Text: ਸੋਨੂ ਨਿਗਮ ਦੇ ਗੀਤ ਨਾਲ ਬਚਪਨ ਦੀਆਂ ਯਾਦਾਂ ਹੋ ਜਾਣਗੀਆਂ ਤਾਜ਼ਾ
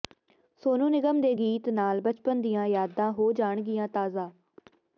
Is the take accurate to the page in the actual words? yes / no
yes